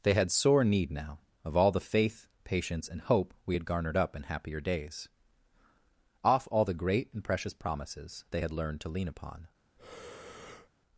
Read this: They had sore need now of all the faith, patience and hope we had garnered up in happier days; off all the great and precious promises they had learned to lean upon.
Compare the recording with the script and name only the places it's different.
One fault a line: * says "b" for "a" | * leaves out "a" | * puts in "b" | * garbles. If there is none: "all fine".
all fine